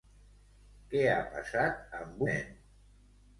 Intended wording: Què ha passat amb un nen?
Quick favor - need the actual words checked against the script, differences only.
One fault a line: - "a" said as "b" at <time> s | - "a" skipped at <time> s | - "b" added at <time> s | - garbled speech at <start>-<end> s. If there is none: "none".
- "un" skipped at 2.2 s